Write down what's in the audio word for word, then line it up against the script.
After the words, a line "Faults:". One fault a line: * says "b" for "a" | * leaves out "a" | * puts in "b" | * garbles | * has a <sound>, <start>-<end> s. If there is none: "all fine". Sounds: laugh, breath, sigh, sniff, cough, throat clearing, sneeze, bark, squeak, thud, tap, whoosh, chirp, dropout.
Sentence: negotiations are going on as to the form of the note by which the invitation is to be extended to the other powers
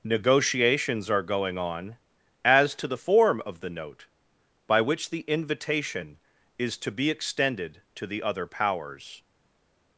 negotiations are going on as to the form of the note by which the invitation is to be extended to the other powers
Faults:
all fine